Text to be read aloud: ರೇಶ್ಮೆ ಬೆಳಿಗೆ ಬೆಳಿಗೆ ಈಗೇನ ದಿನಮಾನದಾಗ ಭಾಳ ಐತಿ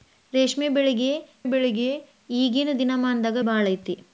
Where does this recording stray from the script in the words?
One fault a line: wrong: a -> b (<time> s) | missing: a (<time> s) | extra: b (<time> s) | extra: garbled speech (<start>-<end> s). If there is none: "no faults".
no faults